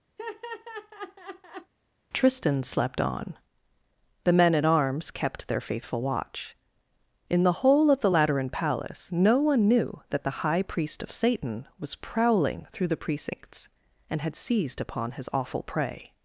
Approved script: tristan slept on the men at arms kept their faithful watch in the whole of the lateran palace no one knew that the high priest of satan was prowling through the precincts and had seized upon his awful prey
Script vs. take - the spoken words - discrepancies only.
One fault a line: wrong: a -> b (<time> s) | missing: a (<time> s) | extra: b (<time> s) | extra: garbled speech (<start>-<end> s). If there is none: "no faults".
no faults